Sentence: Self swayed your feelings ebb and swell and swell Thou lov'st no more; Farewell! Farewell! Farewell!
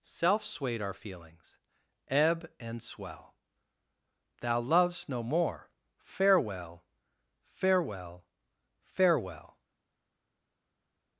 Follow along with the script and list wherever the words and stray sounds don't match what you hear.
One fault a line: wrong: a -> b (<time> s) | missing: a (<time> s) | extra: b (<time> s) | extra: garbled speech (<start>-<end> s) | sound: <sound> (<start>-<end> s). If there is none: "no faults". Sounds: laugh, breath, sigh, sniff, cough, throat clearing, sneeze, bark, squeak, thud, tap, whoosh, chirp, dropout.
wrong: your -> our (0.8 s)
missing: and swell (3.4 s)